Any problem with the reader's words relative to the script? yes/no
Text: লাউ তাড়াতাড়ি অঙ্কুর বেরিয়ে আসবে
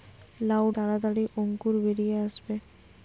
no